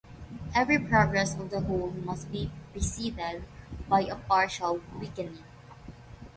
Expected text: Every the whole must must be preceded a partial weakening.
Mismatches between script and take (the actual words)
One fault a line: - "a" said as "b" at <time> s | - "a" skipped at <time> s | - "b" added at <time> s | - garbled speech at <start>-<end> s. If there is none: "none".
- "progress of" added at 0.8 s
- "must" skipped at 2.3 s
- "by" added at 3.9 s